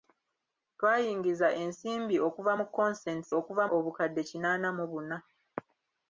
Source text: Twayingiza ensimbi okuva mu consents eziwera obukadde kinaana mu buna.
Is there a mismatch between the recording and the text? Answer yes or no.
yes